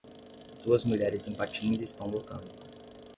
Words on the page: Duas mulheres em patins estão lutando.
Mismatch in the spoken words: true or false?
false